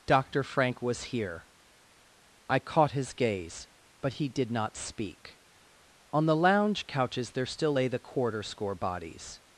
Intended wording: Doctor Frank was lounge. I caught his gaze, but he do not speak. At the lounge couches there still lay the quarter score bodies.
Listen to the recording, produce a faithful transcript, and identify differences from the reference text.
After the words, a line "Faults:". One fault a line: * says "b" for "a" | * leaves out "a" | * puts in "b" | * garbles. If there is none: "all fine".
Doctor Frank was here. I caught his gaze, but he did not speak. On the lounge couches there still lay the quarter score bodies.
Faults:
* says "here" for "lounge"
* says "did" for "do"
* says "On" for "At"